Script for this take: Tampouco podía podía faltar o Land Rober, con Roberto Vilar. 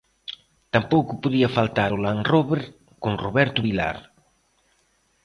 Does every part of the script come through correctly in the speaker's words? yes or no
no